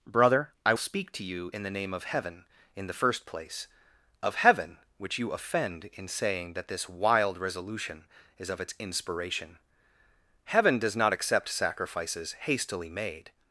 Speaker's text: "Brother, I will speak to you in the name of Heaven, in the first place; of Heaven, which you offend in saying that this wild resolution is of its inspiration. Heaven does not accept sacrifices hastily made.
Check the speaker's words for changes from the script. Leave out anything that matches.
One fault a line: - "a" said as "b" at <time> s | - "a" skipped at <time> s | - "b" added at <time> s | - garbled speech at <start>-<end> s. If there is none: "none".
- "will" skipped at 0.7 s